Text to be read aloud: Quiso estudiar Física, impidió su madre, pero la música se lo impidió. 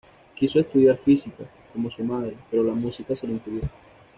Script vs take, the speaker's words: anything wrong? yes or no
yes